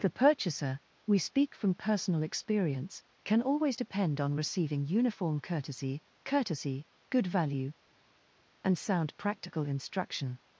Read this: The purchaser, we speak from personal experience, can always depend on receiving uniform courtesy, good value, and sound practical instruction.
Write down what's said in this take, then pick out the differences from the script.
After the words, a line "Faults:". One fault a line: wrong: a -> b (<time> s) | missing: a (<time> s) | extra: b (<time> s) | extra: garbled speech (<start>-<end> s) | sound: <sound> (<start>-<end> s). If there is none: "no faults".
The purchaser, we speak from personal experience, can always depend on receiving uniform courtesy courtesy, good value, and sound practical instruction.
Faults:
extra: courtesy (6.2 s)